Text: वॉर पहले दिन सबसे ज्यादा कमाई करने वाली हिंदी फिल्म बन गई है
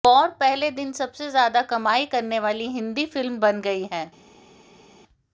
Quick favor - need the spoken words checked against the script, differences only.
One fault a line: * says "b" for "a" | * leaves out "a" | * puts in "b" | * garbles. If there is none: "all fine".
all fine